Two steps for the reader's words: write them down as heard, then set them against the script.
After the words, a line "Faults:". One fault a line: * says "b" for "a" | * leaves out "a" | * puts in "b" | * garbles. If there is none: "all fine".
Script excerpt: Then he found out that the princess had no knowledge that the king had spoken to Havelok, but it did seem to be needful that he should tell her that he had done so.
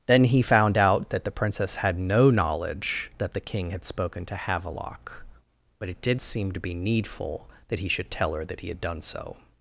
Then he found out that the princess had no knowledge that the king had spoken to Havelok, but it did seem to be needful that he should tell her that he had done so.
Faults:
all fine